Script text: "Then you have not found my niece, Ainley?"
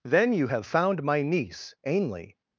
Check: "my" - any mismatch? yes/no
no